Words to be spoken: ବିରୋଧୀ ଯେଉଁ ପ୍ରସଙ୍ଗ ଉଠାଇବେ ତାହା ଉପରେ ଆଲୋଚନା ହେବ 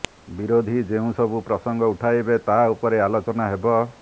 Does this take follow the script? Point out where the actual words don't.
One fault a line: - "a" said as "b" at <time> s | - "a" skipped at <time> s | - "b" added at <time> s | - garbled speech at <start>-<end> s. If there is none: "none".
- "ସବୁ" added at 1.2 s